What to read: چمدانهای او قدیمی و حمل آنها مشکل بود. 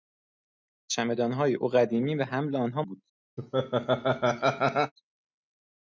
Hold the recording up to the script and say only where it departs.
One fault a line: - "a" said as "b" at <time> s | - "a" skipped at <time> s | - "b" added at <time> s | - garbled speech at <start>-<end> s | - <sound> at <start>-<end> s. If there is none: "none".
- "مشکل" skipped at 2.8 s
- laugh at 3.4-4.9 s